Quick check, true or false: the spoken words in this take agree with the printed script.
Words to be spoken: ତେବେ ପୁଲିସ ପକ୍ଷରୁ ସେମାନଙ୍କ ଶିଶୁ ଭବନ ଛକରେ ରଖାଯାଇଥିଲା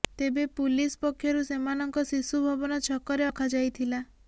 true